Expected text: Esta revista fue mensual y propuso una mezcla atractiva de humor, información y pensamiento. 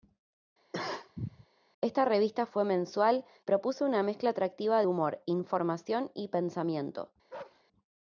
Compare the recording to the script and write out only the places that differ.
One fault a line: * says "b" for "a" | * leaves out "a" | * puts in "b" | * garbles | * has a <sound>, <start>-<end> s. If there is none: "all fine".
* has a cough, 0.7-1.5 s
* leaves out "y"
* leaves out "de"
* has a bark, 7.3-7.6 s